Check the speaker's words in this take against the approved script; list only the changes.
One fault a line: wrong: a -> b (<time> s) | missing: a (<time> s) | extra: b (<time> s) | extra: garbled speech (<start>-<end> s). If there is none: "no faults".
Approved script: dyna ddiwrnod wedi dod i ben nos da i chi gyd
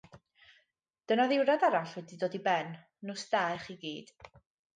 extra: arall (1.7 s)